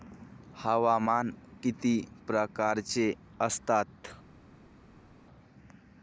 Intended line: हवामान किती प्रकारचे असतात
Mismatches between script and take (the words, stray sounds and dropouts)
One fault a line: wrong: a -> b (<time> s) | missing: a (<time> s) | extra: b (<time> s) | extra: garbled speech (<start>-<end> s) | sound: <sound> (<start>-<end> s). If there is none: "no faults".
no faults